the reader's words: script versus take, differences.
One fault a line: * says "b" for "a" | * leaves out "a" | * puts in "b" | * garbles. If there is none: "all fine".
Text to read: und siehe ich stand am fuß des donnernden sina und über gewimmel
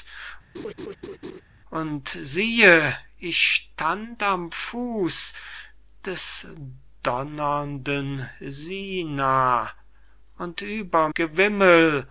all fine